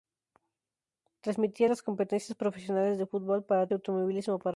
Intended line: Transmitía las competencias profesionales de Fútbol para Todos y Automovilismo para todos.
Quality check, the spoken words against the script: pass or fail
fail